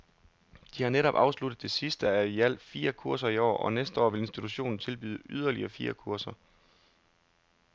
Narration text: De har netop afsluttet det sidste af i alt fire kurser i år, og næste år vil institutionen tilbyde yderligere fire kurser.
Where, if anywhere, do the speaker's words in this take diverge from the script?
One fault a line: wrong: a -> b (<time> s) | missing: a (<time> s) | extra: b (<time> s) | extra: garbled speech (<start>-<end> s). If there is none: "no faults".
no faults